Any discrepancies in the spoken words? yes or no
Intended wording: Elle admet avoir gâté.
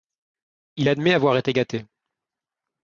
yes